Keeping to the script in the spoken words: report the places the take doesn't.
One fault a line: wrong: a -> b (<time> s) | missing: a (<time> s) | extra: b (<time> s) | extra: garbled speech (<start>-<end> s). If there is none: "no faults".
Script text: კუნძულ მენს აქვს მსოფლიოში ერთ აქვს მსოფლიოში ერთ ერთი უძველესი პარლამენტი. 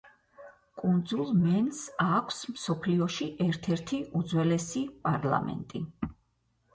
missing: აქვს მსოფლიოში ერთ (3.7 s)